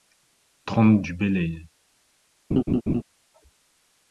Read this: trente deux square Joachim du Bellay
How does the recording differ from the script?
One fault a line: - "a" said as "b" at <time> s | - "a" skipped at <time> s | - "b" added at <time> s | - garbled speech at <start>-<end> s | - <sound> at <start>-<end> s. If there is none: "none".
- "deux square Joachim" skipped at 1.0 s
- laugh at 2.5-3.0 s